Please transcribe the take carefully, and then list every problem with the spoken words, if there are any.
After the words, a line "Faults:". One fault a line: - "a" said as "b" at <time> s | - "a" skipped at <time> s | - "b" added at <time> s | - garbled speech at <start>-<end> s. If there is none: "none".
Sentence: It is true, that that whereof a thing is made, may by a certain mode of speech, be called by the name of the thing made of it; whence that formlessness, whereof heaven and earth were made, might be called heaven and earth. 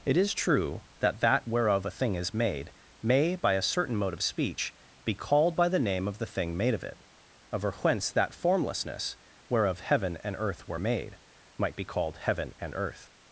It is true, that that whereof a thing is made, may by a certain mode of speech, be called by the name of the thing made of it; over whence that formlessness, whereof heaven and earth were made, might be called heaven and earth.
Faults:
- "over" added at 7.5 s